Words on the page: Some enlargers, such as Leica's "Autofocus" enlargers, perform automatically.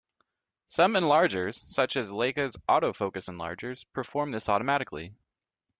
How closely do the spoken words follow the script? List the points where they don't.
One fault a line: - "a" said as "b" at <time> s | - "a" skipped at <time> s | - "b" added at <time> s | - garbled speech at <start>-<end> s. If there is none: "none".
- "this" added at 4.3 s